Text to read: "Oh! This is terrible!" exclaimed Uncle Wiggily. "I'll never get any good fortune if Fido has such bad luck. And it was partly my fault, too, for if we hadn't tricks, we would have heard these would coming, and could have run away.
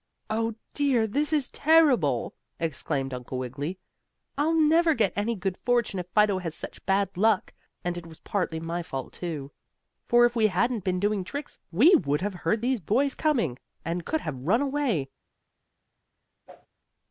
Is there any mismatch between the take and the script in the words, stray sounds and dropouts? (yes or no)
yes